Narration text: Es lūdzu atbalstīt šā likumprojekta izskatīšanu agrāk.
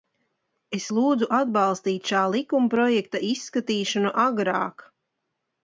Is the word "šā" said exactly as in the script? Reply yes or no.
yes